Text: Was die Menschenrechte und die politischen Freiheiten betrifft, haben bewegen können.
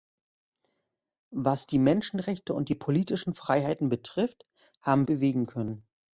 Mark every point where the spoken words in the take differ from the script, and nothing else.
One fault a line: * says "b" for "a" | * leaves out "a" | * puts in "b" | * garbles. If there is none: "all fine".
all fine